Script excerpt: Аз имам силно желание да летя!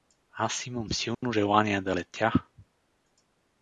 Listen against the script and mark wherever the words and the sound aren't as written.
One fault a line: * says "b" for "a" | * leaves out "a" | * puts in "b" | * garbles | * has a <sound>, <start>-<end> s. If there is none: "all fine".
* has a dropout, 1.1-1.2 s